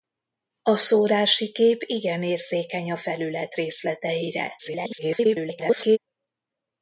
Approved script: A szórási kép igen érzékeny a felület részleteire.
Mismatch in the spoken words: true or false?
true